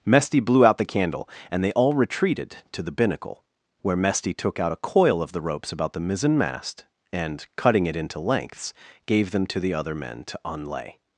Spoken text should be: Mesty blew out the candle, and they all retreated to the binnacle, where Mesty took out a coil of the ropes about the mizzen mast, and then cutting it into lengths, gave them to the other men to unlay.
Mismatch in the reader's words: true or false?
true